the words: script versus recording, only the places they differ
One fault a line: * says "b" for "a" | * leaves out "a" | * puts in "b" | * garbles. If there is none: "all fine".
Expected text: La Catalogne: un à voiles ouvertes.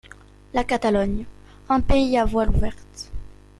* puts in "pays"